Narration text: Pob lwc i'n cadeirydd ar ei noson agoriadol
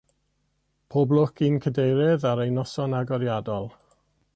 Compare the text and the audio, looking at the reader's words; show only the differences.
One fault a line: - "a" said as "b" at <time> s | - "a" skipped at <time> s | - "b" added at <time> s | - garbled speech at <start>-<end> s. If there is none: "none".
none